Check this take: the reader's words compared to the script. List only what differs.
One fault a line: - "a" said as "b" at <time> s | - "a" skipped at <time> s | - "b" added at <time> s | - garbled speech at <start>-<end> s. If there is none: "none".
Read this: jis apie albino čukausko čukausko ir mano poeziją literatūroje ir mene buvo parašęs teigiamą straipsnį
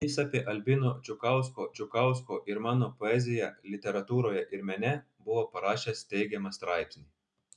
none